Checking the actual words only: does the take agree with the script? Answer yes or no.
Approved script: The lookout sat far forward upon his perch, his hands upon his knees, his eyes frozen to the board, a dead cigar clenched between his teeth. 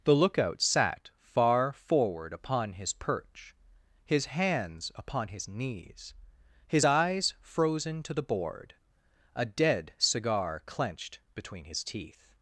yes